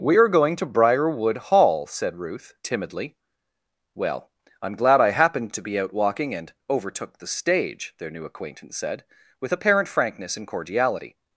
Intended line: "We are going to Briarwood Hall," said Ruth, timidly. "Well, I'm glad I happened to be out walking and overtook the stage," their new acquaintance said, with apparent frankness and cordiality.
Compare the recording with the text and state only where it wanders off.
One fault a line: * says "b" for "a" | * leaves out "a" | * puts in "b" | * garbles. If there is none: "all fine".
all fine